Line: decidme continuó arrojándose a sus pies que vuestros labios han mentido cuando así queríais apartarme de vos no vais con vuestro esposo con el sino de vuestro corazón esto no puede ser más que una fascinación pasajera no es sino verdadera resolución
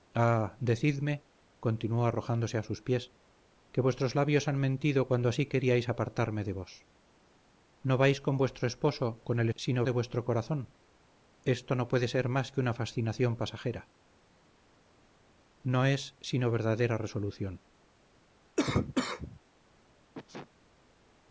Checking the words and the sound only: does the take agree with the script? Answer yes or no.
no